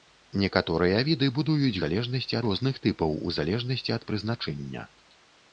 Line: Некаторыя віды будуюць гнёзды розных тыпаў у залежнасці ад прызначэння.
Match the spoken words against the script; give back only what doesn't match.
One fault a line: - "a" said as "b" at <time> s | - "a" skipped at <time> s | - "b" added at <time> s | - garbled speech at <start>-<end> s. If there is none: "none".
- "гнёзды" said as "залежнасці" at 1.8 s